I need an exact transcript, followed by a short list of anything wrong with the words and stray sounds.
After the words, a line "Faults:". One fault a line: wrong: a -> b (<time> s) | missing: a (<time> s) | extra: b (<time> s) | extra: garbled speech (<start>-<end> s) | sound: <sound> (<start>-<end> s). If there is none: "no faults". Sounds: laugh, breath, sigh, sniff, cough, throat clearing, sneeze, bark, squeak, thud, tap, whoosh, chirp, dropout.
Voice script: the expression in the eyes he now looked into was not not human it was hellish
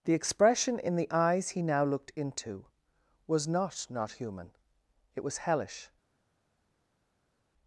the expression in the eyes he now looked into was not not human it was hellish
Faults:
no faults